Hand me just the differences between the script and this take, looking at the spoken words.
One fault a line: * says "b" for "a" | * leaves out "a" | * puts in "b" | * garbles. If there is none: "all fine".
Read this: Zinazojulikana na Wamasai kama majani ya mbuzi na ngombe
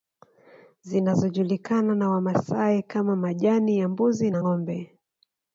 all fine